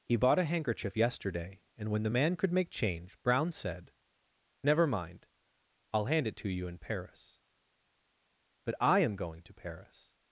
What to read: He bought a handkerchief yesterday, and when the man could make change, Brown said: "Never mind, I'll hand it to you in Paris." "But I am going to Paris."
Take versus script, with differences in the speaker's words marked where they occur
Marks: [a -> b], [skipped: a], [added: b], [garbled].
He bought a handkerchief yesterday, and when the man could make change, Brown said: "Never mind, I'll hand it to you in Paris." "But I am going to Paris."